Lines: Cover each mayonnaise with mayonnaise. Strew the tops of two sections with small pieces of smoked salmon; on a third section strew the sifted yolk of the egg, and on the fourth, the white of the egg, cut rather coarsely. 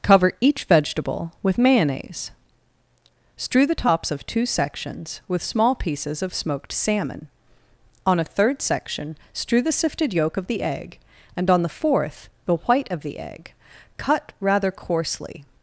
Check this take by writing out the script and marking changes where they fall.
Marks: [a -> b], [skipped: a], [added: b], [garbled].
Cover each [mayonnaise -> vegetable] with mayonnaise. Strew the tops of two sections with small pieces of smoked salmon; on a third section strew the sifted yolk of the egg, and on the fourth, the white of the egg, cut rather coarsely.